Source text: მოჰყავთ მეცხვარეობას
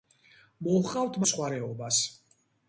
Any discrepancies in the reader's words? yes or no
no